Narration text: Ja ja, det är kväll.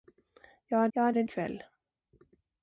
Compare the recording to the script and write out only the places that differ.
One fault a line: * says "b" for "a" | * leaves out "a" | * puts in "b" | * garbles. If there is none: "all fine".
all fine